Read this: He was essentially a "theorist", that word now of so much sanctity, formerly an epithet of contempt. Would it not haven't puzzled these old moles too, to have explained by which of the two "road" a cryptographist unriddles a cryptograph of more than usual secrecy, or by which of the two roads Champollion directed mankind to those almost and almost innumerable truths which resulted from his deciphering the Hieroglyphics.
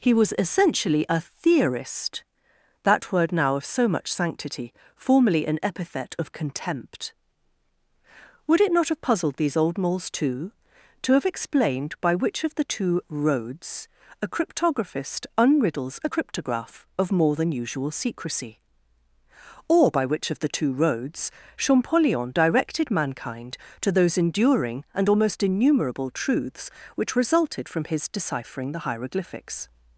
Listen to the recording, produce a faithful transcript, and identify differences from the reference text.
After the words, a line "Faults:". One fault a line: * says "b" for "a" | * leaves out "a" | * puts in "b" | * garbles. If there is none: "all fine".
He was essentially a "theorist", that word now of so much sanctity, formerly an epithet of contempt. Would it not have puzzled these old moles too, to have explained by which of the two "roads" a cryptographist unriddles a cryptograph of more than usual secrecy, or by which of the two roads Champollion directed mankind to those enduring and almost innumerable truths which resulted from his deciphering the Hieroglyphics.
Faults:
* says "have" for "haven't"
* says "roads" for "road"
* says "enduring" for "almost"